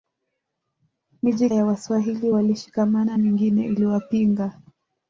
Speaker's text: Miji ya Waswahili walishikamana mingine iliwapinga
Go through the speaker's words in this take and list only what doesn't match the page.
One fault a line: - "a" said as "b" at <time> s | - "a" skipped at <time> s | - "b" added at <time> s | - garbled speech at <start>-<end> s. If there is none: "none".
none